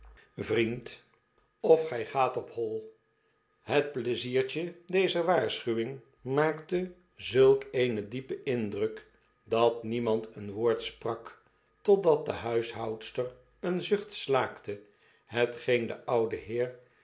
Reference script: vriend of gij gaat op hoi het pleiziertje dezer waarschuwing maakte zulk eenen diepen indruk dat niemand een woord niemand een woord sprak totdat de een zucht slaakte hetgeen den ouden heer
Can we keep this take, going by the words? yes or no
no